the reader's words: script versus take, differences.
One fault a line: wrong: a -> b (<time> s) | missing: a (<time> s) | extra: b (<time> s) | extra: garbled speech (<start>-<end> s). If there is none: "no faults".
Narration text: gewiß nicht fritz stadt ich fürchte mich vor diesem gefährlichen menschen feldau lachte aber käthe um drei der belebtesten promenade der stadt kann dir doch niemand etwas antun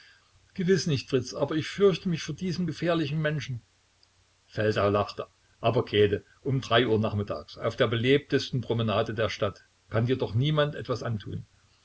wrong: stadt -> aber (1.4 s)
extra: uhr nachmittags auf (6.9 s)